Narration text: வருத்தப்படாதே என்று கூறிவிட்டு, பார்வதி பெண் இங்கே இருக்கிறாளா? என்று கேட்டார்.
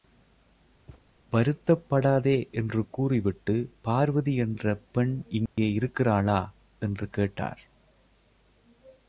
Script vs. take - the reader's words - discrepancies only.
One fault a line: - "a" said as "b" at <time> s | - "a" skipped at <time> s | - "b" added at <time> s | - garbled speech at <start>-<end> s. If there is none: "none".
- "என்ற" added at 4.4 s